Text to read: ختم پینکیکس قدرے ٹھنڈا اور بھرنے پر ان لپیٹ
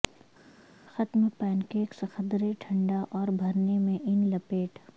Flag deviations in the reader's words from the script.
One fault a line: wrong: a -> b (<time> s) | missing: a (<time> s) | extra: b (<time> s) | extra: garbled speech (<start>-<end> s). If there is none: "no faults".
wrong: پر -> میں (3.8 s)